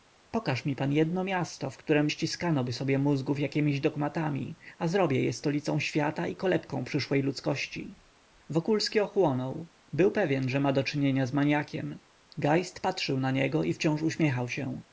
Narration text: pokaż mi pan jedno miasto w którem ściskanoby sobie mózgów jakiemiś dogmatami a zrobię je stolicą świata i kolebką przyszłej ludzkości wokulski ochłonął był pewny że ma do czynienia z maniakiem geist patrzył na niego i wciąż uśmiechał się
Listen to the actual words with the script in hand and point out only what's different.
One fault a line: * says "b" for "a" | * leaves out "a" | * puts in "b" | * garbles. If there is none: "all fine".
all fine